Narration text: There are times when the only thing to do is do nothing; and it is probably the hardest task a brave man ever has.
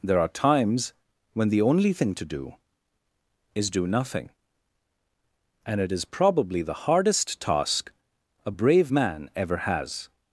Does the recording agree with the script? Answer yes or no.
yes